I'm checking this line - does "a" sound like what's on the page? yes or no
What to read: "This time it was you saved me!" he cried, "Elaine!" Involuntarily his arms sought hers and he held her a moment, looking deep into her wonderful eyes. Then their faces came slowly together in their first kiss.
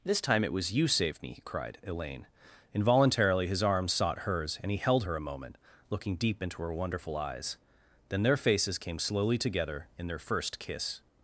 yes